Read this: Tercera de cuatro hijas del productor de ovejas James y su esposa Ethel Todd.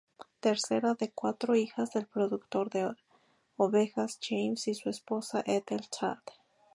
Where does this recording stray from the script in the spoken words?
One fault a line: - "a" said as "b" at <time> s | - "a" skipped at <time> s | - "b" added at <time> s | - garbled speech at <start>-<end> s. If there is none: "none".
none